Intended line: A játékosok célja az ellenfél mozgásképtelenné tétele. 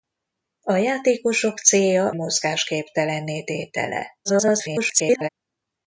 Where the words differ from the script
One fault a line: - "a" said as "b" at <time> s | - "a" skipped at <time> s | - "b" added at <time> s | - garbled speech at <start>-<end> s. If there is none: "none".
- "az ellenfél" skipped at 2.1 s
- garbled speech at 4.2-5.3 s